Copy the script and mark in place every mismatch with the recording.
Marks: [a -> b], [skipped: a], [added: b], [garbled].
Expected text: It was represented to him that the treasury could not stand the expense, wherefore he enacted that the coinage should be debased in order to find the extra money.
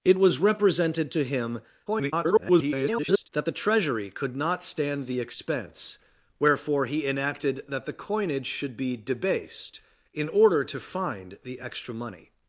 It was represented to him [garbled] that the treasury could not stand the expense, wherefore he enacted that the coinage should be debased in order to find the extra money.